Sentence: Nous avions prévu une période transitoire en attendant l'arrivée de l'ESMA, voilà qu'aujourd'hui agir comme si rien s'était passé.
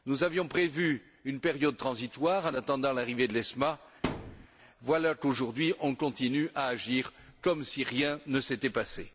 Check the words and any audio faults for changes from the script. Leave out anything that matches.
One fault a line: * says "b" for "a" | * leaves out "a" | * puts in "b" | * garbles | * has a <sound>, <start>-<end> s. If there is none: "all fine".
* has a thud, 4.0-4.5 s
* puts in "on continue à"
* puts in "ne"